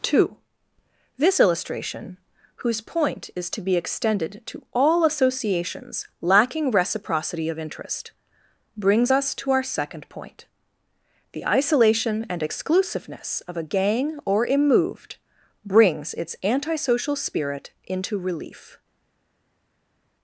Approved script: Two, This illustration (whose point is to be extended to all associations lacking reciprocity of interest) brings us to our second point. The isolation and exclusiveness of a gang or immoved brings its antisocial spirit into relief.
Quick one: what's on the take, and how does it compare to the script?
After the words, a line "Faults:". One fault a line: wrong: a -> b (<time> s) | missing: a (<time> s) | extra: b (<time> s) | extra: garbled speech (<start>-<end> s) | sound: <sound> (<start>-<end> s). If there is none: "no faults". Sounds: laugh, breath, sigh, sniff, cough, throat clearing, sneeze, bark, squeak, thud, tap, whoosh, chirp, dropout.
Two, This illustration (whose point is to be extended to all associations lacking reciprocity of interest) brings us to our second point. The isolation and exclusiveness of a gang or immoved brings its antisocial spirit into relief.
Faults:
no faults